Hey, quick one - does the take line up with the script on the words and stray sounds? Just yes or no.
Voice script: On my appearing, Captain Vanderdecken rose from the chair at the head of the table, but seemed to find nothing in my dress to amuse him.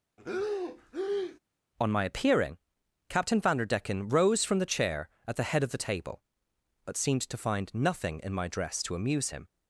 no